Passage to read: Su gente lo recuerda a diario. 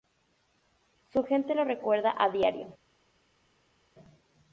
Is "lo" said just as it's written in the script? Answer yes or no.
yes